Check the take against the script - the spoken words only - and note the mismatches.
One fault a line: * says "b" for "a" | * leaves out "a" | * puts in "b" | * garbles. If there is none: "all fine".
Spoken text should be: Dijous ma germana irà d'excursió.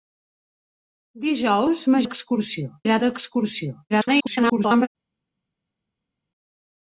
* says "d'excursió" for "germana"
* garbles